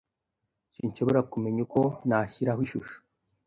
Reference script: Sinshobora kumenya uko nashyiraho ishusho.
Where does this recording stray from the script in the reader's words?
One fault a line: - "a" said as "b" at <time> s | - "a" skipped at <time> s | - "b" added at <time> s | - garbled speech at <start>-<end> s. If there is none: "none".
none